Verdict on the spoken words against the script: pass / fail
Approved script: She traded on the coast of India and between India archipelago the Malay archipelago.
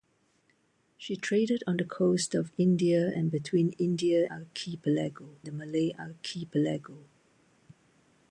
pass